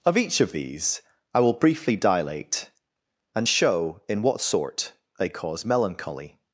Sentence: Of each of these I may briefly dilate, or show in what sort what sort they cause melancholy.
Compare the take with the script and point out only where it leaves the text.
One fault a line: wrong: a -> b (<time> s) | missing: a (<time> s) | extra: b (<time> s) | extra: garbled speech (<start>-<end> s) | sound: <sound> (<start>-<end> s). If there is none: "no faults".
wrong: may -> will (1.4 s)
wrong: or -> and (3.4 s)
missing: what sort (4.9 s)